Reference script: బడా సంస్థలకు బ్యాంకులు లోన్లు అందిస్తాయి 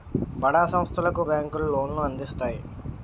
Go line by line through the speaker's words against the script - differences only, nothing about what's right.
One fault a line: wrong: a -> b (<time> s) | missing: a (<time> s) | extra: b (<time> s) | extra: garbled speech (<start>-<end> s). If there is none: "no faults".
no faults